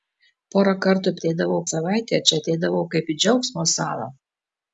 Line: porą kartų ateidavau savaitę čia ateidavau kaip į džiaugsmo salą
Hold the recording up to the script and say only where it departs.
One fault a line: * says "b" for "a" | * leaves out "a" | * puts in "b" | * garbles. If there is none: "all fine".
all fine